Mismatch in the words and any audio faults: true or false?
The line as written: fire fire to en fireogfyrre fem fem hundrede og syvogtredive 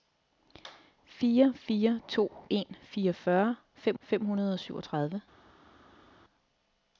false